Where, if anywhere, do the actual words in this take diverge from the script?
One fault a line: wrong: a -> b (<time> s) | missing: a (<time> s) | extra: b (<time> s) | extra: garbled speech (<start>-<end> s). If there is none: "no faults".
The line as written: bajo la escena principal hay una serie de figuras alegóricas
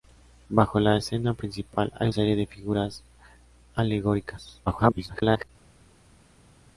missing: una (2.1 s)
extra: garbled speech (4.7-5.5 s)